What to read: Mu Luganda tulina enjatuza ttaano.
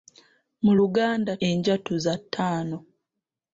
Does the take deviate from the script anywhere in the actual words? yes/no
yes